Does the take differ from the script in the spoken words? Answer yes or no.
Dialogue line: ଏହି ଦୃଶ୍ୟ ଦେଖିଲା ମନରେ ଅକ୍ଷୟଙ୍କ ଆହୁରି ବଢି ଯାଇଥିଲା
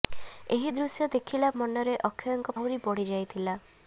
no